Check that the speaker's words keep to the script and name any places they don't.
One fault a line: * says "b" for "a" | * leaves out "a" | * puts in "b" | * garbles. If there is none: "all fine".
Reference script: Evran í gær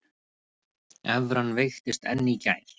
* puts in "veiktist enn"